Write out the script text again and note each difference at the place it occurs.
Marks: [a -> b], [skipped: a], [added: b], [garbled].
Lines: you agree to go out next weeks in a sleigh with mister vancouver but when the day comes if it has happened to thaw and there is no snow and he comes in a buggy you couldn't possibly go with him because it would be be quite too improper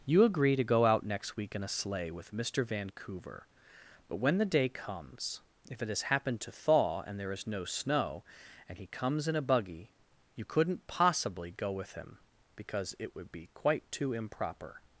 you agree to go out next [weeks -> week] in a sleigh with mister vancouver but when the day comes if it has happened to thaw and there is no snow and he comes in a buggy you couldn't possibly go with him because it would be [skipped: be] quite too improper